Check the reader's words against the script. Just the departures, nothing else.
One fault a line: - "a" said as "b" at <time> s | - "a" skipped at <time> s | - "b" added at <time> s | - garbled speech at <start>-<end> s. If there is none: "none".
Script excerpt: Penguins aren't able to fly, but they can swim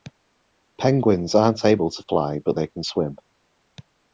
none